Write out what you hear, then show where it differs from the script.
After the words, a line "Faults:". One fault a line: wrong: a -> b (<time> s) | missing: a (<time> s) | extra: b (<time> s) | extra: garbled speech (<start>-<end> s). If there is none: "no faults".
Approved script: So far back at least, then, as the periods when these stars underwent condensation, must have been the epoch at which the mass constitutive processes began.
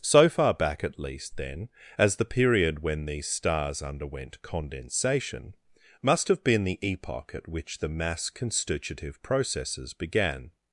So far back at least, then, as the period when these stars underwent condensation, must have been the epoch at which the mass constitutive processes began.
Faults:
wrong: periods -> period (2.2 s)